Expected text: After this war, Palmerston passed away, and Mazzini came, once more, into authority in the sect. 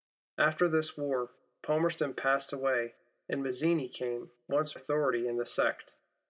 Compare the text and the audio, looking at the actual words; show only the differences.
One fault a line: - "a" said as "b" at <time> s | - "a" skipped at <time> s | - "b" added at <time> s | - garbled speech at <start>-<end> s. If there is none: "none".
- "more into" skipped at 4.8 s